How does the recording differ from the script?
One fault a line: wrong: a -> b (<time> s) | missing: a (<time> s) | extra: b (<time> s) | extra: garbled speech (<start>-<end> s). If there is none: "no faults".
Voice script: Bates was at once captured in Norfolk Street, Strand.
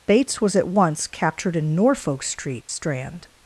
no faults